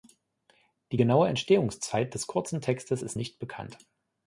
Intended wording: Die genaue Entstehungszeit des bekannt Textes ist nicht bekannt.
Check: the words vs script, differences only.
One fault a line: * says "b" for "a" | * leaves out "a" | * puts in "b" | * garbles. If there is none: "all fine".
* says "kurzen" for "bekannt"